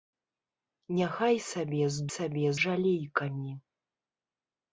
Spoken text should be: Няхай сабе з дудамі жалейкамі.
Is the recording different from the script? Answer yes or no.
yes